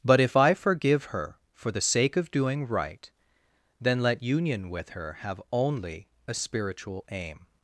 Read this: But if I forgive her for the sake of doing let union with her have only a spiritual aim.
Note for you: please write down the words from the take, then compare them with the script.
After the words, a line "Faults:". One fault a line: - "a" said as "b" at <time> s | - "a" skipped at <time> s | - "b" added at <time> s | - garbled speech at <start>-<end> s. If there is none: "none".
But if I forgive her for the sake of doing right, then let union with her have only a spiritual aim.
Faults:
- "right then" added at 2.7 s